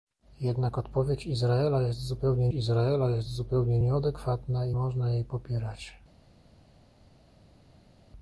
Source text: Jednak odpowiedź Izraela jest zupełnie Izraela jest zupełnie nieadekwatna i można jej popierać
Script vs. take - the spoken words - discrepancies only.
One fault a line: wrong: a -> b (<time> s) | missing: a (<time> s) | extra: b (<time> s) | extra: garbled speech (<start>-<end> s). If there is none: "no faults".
no faults